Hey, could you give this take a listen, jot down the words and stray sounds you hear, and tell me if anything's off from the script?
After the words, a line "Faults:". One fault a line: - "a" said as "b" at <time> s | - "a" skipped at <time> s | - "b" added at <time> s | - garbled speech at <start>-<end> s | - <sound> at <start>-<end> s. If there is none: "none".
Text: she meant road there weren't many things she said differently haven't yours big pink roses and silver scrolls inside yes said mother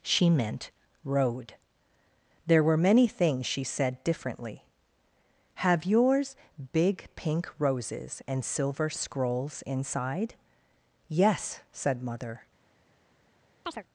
she meant road there were many things she said differently have yours big pink roses and silver scrolls inside yes said mother
Faults:
- "weren't" said as "were" at 2.6 s
- "haven't" said as "have" at 5.6 s
- chirp at 13.7-13.8 s